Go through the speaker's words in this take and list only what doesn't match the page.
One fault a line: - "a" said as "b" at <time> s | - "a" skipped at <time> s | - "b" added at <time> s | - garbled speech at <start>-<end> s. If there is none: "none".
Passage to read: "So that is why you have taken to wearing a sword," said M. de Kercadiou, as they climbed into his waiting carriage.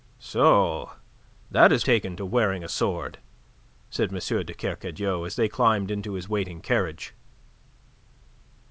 - "why you have" skipped at 1.9 s